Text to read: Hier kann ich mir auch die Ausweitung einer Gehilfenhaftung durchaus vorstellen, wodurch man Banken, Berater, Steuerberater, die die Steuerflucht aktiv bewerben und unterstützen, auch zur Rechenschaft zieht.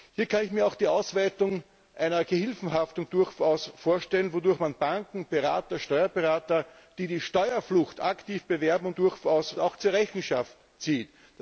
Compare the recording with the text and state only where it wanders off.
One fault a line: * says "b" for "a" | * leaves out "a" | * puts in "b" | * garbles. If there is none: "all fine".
* says "durchaus" for "unterstützen"